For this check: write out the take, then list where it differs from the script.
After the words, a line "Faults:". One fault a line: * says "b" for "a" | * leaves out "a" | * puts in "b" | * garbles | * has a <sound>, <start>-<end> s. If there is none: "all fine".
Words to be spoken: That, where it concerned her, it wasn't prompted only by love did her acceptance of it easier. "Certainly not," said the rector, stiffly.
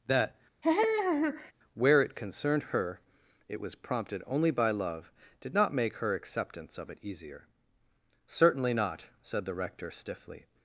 That, where it concerned her, it was prompted only by love did not make her acceptance of it easier. "Certainly not," said the rector, stiffly.
Faults:
* has a laugh, 0.6-1.5 s
* says "was" for "wasn't"
* puts in "not make"